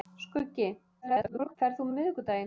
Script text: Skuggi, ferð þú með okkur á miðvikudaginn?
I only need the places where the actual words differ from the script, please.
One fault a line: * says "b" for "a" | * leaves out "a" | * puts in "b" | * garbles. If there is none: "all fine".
* garbles
* leaves out "með okkur"